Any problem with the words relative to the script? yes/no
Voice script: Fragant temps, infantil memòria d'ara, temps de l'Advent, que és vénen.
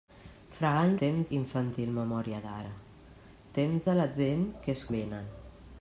no